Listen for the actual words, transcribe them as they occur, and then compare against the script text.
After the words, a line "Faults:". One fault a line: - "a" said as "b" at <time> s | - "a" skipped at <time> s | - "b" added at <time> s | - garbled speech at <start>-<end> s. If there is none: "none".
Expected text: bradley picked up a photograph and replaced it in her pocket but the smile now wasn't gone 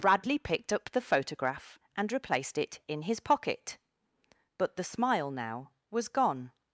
bradley picked up the photograph and replaced it in his pocket but the smile now was gone
Faults:
- "a" said as "the" at 0.9 s
- "her" said as "his" at 3.0 s
- "wasn't" said as "was" at 5.9 s